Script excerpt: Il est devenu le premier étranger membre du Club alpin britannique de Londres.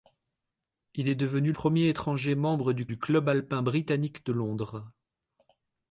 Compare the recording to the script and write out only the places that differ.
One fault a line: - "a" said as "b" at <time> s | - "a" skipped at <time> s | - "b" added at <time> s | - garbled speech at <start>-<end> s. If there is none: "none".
- "le" skipped at 1.5 s
- "du" added at 2.8 s